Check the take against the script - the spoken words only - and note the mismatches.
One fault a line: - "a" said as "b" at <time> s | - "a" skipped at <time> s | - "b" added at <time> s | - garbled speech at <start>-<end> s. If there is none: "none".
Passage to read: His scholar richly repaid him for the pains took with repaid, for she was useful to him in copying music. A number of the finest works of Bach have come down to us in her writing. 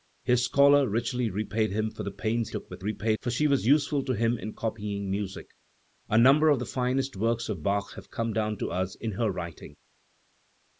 none